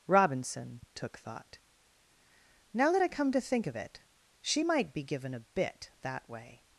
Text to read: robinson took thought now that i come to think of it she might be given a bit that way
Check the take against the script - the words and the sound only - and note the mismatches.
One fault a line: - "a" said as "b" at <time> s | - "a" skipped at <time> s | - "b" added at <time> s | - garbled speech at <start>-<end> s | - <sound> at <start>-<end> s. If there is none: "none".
none